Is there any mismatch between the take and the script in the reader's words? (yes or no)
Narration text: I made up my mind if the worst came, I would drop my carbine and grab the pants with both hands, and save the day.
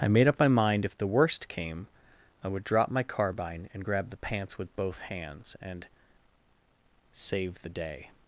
no